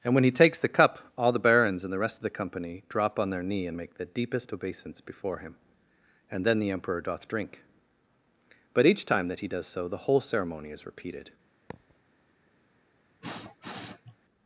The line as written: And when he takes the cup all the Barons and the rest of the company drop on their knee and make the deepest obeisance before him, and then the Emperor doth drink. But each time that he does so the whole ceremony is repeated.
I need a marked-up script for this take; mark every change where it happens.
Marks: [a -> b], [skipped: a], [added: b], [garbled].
And when he takes the cup all the Barons and the rest of the company drop on their knee and make the deepest obeisance before him, and then the Emperor doth drink. But each time that he does so the whole ceremony is repeated.